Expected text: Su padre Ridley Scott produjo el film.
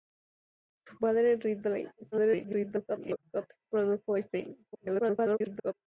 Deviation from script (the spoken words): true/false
true